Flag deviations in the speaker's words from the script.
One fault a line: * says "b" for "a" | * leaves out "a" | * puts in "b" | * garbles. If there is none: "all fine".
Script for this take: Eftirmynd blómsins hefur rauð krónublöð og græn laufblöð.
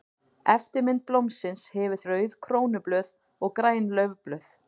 all fine